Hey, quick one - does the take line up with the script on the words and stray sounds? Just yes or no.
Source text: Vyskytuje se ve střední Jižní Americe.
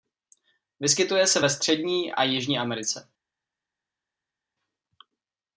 no